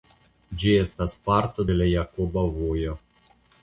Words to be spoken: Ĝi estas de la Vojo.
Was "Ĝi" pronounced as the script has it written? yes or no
yes